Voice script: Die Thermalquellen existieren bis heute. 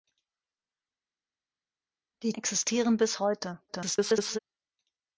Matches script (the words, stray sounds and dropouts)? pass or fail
fail